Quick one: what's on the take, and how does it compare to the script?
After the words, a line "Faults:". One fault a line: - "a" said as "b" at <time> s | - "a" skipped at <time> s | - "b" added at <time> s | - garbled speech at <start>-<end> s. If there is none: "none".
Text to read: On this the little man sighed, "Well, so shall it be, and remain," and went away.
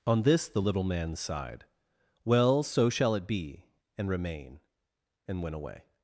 On this the little man sighed, "Well, so shall it be, and remain," and went away.
Faults:
none